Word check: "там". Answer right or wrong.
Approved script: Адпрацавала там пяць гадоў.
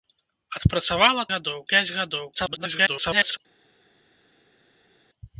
wrong